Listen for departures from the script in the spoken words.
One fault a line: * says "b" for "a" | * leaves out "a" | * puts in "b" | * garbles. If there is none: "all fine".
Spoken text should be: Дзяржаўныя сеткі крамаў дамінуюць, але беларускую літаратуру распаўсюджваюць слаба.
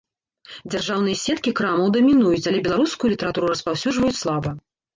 all fine